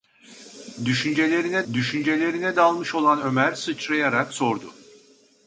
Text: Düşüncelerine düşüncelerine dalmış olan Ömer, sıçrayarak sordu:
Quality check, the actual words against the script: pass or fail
pass